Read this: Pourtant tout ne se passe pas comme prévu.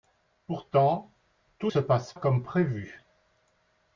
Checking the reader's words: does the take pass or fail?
fail